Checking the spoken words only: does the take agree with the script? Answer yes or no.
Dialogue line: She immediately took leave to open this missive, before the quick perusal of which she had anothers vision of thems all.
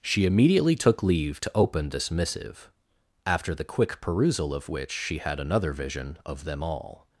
no